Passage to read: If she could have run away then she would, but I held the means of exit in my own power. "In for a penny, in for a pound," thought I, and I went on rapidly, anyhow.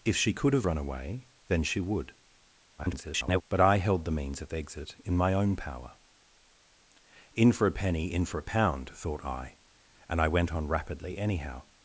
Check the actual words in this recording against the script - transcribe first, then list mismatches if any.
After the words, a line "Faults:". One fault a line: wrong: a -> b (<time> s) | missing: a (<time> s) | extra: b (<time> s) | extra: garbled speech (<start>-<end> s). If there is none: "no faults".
If she could have run away then she would, [garbled] but I held the means of exit in my own power. "In for a penny, in for a pound," thought I, and I went on rapidly, anyhow.
Faults:
extra: garbled speech (2.8-3.4 s)